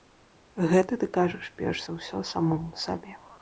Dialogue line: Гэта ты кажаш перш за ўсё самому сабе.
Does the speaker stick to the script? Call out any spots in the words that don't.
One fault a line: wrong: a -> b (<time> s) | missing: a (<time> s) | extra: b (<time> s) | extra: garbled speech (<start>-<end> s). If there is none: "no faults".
no faults